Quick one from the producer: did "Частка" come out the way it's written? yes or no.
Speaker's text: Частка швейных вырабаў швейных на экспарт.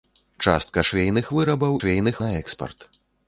yes